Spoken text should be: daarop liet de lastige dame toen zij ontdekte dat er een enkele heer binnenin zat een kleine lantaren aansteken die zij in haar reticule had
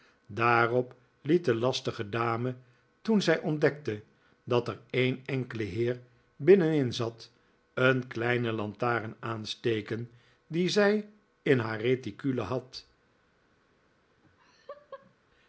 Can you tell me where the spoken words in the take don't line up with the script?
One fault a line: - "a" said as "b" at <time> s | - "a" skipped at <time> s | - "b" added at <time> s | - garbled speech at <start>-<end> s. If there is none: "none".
none